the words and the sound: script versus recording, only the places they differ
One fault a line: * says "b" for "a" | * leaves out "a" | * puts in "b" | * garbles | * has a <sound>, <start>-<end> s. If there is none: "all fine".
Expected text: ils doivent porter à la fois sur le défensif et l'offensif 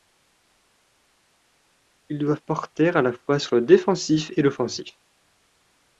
all fine